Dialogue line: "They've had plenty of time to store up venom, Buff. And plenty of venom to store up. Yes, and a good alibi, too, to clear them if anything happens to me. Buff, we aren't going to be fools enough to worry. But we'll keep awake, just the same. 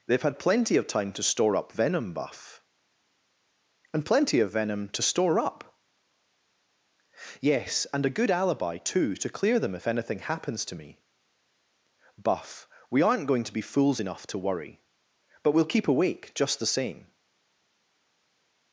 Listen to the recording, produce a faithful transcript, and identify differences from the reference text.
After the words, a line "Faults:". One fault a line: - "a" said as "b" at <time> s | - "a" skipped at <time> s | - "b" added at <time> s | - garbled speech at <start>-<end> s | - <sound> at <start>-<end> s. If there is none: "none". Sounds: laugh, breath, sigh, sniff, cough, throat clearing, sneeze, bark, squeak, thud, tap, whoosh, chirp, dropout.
"They've had plenty of time to store up venom, Buff. And plenty of venom to store up. Yes, and a good alibi, too, to clear them if anything happens to me. Buff, we aren't going to be fools enough to worry. But we'll keep awake, just the same.
Faults:
none